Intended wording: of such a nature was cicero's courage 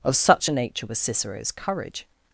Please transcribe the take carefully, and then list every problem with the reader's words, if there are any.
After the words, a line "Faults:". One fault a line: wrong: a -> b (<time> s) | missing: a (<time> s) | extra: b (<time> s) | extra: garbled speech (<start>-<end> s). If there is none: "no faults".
of such a nature was cicero's courage
Faults:
no faults